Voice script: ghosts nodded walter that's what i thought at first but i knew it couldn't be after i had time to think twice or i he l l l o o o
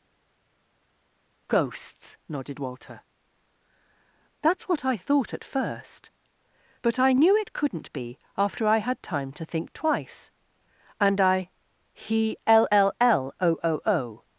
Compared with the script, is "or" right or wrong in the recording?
wrong